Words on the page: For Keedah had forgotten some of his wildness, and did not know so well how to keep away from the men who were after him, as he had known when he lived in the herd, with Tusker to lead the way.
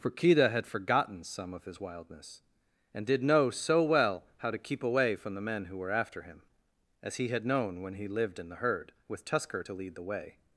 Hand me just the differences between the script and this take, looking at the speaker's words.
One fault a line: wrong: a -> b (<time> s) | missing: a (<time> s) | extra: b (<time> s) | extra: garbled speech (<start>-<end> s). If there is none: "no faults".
missing: not (3.2 s)